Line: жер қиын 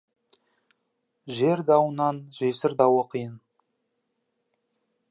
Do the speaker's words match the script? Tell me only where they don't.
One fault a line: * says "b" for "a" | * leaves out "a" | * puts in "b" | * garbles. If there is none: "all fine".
* puts in "дауынан жесір дауы"